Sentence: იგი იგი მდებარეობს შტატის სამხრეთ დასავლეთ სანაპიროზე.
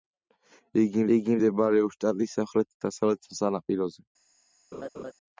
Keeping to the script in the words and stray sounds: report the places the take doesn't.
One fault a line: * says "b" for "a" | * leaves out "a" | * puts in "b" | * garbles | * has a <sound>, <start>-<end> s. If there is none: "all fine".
* has a laugh, 4.7-5.1 s